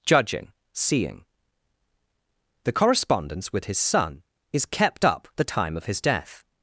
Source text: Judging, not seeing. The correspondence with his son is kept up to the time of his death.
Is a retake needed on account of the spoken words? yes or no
yes